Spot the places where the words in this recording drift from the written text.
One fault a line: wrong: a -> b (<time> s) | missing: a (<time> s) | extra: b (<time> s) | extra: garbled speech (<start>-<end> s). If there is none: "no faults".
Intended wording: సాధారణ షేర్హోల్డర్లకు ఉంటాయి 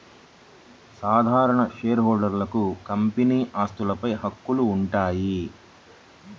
extra: కంపెనీ ఆస్తులపై హక్కులు (2.9 s)